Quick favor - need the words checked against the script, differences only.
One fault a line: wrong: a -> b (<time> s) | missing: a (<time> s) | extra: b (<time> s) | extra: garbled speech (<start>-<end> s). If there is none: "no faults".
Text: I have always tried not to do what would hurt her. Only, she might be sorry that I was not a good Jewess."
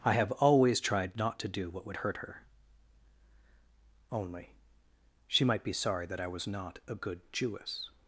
no faults